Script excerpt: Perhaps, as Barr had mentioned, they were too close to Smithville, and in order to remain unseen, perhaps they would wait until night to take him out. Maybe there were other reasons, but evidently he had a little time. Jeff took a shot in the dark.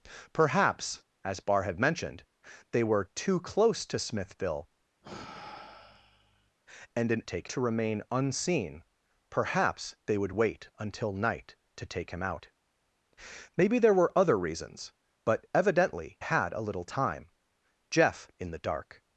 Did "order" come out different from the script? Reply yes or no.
yes